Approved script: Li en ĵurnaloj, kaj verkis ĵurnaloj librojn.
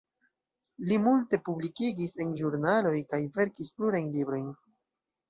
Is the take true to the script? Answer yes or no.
no